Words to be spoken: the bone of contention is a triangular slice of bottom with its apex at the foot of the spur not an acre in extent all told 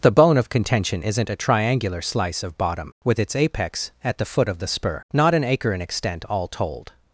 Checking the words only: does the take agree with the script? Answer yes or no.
no